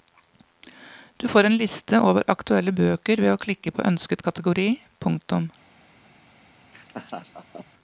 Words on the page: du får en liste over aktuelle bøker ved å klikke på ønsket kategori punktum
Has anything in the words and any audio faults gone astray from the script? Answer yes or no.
yes